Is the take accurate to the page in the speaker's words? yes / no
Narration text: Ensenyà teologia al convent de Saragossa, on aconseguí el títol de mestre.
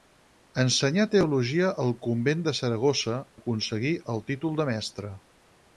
no